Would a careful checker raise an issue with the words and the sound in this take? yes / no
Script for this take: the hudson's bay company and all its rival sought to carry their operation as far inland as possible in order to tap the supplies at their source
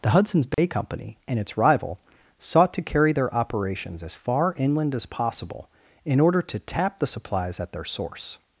yes